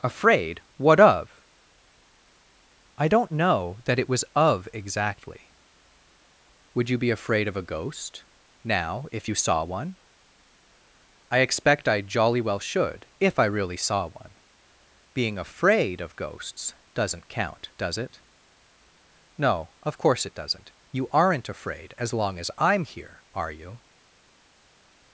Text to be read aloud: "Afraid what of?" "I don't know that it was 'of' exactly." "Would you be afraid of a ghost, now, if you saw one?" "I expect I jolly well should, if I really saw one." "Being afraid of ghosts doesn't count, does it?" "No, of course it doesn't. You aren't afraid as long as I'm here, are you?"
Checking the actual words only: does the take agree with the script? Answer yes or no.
yes